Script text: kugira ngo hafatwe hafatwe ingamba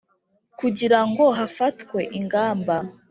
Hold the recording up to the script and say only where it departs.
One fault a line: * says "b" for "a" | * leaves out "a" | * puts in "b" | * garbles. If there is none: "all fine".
* leaves out "hafatwe"